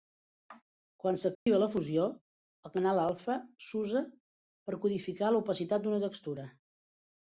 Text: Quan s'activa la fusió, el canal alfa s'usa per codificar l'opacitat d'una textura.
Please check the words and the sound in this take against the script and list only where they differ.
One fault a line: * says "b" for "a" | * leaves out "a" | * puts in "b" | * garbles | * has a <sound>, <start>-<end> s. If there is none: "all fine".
* has a dropout, 1.3-1.5 s